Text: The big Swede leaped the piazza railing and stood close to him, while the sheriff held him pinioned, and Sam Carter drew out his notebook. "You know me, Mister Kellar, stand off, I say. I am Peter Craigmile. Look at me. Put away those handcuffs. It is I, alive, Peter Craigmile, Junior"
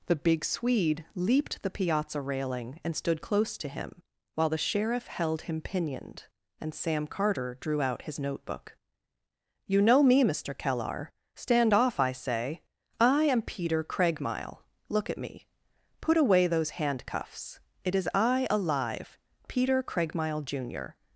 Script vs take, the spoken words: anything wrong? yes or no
no